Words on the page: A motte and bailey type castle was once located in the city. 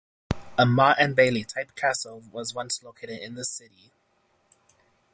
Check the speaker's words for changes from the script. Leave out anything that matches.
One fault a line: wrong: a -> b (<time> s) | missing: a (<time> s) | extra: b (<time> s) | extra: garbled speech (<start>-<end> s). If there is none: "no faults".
no faults